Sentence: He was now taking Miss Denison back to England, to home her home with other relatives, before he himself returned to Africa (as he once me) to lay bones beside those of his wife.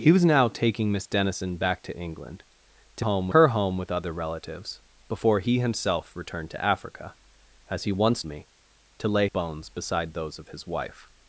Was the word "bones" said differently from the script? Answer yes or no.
no